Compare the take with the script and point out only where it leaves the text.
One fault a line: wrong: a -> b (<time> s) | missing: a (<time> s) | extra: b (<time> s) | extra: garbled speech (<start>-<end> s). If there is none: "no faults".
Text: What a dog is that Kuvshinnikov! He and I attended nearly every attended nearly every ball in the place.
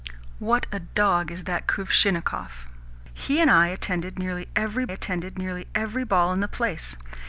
no faults